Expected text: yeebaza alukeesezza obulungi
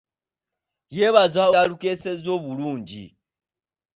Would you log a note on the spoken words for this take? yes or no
no